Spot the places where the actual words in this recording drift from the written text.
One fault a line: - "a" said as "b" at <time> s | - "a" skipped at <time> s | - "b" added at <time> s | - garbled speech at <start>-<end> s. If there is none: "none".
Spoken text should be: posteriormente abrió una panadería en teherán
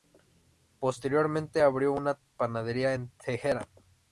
none